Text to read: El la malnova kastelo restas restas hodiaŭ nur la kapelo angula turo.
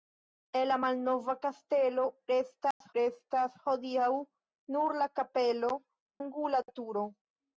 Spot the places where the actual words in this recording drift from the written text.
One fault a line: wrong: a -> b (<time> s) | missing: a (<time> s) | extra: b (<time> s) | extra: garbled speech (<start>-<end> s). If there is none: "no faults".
no faults